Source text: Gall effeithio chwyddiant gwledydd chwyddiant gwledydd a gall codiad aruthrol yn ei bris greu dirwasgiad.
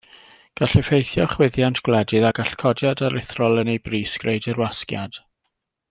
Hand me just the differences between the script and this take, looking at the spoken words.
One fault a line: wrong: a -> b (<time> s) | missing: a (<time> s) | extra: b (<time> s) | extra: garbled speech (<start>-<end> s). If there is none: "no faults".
missing: chwyddiant gwledydd (2.2 s)